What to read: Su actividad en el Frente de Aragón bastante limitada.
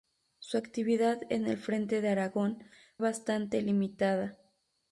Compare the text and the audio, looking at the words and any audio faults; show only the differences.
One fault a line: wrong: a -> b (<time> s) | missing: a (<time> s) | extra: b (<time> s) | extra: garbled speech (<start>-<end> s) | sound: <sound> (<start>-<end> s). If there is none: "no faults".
no faults